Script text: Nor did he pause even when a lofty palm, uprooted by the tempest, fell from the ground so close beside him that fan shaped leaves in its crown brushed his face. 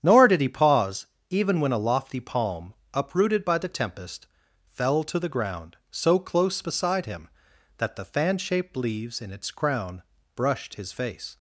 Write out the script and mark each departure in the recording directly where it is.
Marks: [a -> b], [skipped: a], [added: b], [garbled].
Nor did he pause even when a lofty palm, uprooted by the tempest, fell [from -> to] the ground so close beside him that [added: the] fan shaped leaves in its crown brushed his face.